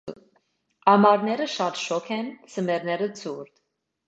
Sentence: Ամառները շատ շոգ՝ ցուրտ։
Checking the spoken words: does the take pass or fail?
fail